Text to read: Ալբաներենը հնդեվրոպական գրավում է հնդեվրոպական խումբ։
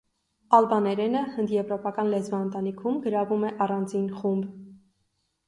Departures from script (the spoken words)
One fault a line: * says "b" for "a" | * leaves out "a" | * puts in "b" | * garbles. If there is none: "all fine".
* puts in "լեզվաընտանիքում"
* says "առանձին" for "հնդեվրոպական"